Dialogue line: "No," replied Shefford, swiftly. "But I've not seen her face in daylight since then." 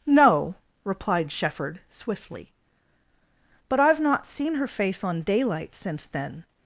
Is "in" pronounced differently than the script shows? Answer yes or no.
yes